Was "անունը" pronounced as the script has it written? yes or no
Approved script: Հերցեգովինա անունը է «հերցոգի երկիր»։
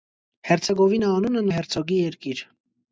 yes